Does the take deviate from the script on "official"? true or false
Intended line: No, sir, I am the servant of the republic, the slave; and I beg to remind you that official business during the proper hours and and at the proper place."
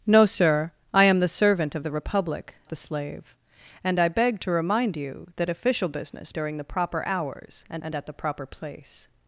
false